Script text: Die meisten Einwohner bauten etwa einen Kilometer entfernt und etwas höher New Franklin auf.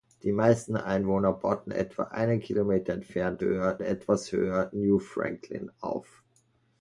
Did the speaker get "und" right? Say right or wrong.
wrong